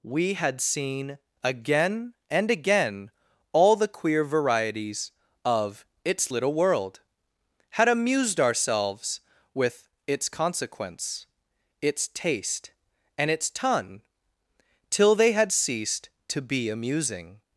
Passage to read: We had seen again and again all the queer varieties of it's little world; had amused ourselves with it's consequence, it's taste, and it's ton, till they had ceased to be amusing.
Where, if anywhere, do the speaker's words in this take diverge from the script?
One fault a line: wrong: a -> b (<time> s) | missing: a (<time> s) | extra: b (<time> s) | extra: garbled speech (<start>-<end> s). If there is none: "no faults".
no faults